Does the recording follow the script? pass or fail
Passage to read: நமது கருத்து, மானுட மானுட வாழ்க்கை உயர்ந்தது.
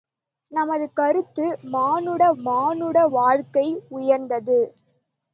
pass